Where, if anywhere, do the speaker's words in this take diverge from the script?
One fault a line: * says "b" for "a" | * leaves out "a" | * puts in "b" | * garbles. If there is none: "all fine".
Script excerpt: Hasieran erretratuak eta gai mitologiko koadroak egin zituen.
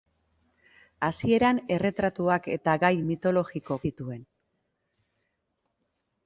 * leaves out "koadroak egin"